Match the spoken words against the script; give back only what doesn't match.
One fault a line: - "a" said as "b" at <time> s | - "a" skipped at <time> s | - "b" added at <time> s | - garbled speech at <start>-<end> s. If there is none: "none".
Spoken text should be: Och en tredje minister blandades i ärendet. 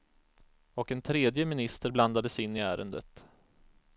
- "in" added at 2.4 s